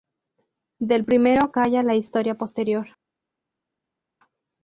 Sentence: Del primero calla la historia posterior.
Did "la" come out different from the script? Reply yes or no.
no